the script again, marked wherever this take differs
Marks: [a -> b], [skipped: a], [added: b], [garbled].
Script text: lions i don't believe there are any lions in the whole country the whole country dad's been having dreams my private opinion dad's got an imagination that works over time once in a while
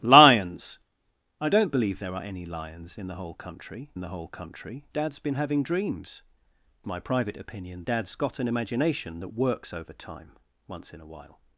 lions i don't believe there are any lions in the whole country the whole country dad's been having dreams my private opinion dad's got an imagination that works over time once in a while